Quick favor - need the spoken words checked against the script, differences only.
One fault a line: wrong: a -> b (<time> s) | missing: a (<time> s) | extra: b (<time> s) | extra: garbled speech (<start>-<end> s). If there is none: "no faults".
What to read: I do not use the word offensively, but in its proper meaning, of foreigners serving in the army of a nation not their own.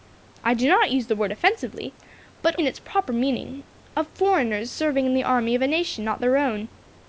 no faults